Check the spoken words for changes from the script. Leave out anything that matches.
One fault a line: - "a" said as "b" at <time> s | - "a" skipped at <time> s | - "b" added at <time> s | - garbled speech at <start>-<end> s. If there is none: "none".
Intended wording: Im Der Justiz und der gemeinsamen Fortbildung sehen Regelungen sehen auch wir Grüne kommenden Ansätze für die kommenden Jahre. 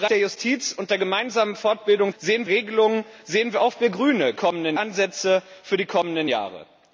none